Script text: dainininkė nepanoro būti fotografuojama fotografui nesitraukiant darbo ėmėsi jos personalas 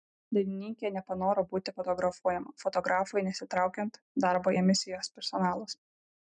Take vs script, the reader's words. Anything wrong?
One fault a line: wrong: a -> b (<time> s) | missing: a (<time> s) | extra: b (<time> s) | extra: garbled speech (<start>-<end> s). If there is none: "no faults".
no faults